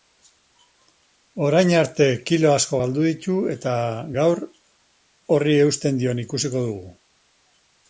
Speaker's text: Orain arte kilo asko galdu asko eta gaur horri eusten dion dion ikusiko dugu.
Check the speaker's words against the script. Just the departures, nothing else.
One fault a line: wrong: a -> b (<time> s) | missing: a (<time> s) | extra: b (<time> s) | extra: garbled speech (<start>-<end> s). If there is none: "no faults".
wrong: asko -> ditu (3.1 s)
missing: dion (6.3 s)